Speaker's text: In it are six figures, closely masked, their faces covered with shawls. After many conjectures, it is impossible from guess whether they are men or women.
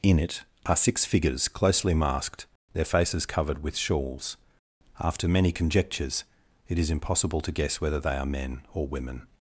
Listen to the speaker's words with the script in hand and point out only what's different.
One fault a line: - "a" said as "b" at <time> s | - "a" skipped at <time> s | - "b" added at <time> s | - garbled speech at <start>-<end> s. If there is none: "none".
- "from" said as "to" at 7.4 s